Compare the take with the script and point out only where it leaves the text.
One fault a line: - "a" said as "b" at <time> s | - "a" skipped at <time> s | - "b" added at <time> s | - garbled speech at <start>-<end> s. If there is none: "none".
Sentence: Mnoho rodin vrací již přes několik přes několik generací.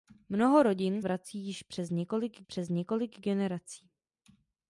none